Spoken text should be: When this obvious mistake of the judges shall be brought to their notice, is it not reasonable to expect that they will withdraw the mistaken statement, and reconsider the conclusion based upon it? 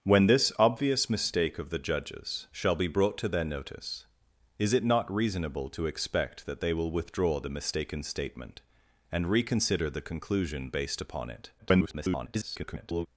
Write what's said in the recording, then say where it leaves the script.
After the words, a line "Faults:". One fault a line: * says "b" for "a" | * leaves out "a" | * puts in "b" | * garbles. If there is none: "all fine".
When this obvious mistake of the judges shall be brought to their notice, is it not reasonable to expect that they will withdraw the mistaken statement, and reconsider the conclusion based upon it? [garbled]
Faults:
* garbles